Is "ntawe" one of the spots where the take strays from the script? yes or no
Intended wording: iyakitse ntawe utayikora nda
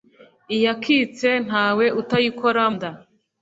no